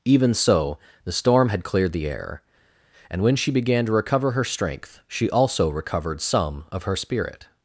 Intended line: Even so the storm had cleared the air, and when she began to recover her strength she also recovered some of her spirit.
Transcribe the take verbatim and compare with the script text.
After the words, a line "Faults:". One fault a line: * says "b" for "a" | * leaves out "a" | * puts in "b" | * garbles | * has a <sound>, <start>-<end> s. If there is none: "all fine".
Even so the storm had cleared the air, and when she began to recover her strength she also recovered some of her spirit.
Faults:
all fine